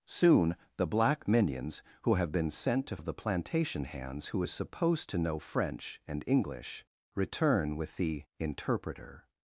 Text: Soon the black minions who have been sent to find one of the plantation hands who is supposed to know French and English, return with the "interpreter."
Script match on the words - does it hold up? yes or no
no